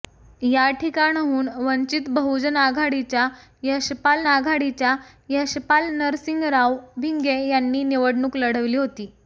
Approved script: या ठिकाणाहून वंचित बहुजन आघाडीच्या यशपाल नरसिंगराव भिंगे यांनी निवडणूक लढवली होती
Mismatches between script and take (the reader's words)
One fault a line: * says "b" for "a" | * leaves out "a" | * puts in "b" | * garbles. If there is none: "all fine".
* puts in "आघाडीच्या यशपाल"